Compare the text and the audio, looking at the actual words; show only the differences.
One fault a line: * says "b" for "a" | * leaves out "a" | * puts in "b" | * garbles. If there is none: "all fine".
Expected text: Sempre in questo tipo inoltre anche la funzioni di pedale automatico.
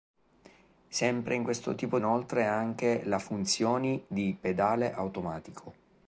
all fine